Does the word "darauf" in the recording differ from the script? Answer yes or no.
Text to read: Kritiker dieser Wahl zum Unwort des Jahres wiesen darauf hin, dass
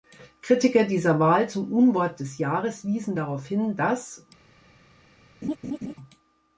no